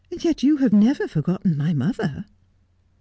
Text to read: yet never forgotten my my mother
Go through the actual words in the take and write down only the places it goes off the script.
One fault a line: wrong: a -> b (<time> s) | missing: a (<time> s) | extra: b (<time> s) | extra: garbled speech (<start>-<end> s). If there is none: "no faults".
extra: you have (0.4 s)
missing: my (1.7 s)